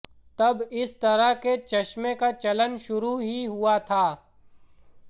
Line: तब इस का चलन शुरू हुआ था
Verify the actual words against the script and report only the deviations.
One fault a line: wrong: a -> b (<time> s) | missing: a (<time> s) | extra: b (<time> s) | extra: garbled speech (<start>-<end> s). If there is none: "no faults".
extra: तरह के चश्मे (1.0 s)
extra: ही (3.2 s)